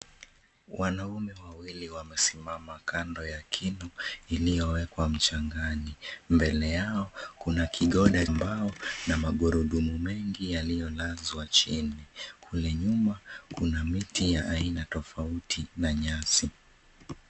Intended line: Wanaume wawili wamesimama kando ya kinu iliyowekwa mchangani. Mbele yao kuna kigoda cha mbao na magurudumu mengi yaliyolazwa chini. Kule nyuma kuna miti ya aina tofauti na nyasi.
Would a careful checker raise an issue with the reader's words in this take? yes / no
yes